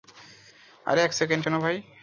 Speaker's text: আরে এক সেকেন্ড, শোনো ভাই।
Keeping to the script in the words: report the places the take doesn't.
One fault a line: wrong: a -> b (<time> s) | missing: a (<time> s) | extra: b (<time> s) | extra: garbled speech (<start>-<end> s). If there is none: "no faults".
no faults